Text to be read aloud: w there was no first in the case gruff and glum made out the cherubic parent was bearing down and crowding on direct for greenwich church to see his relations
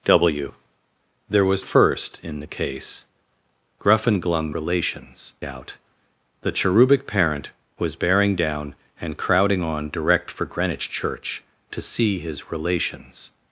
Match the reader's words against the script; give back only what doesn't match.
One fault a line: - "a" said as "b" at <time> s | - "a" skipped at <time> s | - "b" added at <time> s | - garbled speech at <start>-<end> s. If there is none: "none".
- "no" skipped at 1.6 s
- "made" said as "relations" at 4.5 s